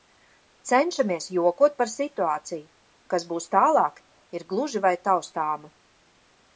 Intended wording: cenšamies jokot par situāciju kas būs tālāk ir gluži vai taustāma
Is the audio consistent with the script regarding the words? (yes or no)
yes